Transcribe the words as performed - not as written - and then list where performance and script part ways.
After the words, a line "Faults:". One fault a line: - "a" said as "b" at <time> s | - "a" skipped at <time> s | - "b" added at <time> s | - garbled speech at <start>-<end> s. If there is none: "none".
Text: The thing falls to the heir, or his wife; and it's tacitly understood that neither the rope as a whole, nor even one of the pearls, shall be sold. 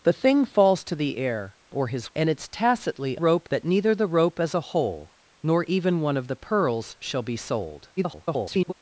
The thing falls to the heir, or his; and it's tacitly rope that neither the rope as a whole, nor even one of the pearls, shall be sold. [garbled]
Faults:
- "wife" skipped at 2.1 s
- "understood" said as "rope" at 3.2 s
- garbled speech at 8.0-8.7 s